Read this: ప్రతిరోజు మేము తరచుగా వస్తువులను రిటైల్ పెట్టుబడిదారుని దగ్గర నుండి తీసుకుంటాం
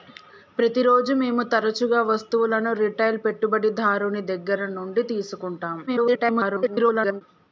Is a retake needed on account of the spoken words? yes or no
yes